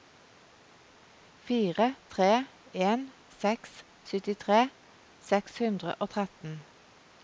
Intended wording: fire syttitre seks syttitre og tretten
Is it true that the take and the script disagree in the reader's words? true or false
true